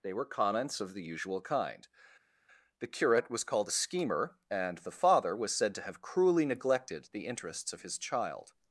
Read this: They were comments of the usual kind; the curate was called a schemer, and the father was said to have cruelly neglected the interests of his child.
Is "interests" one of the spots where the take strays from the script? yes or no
no